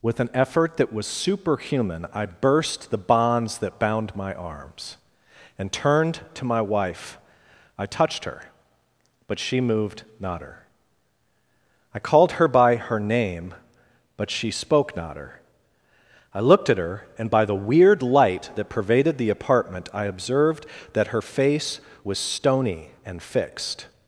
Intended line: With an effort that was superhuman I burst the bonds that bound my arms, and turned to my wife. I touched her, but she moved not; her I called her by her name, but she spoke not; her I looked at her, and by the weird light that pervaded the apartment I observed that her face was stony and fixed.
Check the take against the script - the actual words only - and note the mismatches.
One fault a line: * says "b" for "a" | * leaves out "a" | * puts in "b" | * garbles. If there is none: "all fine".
all fine